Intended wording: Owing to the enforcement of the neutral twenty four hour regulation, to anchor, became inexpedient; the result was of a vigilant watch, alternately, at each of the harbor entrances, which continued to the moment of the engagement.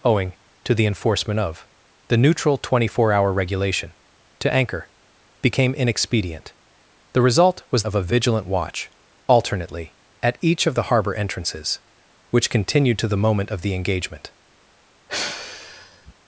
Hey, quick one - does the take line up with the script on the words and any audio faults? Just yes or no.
no